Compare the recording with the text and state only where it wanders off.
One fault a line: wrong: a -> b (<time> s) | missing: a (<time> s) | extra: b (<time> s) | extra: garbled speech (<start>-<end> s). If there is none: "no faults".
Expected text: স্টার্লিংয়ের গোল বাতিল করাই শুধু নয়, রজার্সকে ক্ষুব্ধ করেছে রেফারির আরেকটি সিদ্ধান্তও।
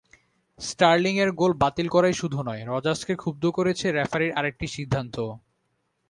no faults